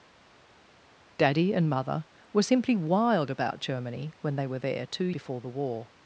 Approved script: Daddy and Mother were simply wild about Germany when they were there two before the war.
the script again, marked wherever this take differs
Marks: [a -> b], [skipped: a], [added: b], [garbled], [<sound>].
Daddy and Mother were simply wild about Germany when they were there two before the war.